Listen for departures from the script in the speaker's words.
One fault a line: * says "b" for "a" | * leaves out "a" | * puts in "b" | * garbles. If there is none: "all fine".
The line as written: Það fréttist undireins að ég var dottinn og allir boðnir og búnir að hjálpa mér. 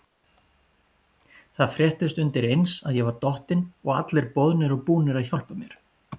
all fine